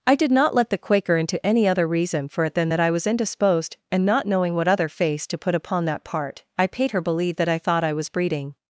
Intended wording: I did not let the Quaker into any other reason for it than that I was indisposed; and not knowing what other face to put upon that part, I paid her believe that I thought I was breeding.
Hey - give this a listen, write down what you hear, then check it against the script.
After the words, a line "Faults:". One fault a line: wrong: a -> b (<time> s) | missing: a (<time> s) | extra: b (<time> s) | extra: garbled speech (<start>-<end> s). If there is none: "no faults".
I did not let the Quaker into any other reason for it than that I was indisposed; and not knowing what other face to put upon that part, I paid her believe that I thought I was breeding.
Faults:
no faults